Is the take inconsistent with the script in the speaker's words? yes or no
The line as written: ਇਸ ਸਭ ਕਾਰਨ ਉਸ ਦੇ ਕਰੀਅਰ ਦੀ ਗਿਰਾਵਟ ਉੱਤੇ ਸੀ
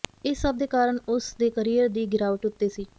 yes